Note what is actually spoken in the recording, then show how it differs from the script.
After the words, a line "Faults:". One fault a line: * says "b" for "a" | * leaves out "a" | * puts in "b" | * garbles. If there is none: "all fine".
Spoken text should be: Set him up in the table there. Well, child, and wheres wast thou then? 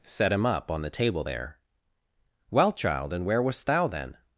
Set him up on the table there. Well, child, and where wast thou then?
Faults:
* says "on" for "in"
* says "where" for "wheres"